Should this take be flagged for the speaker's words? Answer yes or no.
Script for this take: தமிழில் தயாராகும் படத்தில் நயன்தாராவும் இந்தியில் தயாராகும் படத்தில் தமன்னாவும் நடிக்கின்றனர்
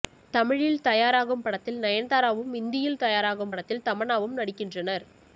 no